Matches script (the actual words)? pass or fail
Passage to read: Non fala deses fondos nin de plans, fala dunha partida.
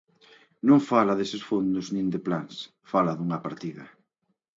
pass